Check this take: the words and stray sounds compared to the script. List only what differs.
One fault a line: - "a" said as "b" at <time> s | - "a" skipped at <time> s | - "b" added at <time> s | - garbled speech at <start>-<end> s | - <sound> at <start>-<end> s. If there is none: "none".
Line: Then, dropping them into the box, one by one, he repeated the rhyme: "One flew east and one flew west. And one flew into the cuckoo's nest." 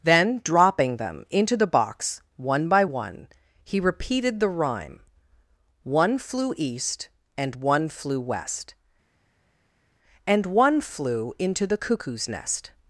none